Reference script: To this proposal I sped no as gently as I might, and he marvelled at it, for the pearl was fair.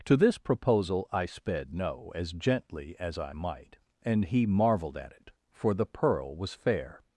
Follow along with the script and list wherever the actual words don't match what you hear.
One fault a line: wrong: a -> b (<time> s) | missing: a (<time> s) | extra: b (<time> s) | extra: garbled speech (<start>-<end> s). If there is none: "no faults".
no faults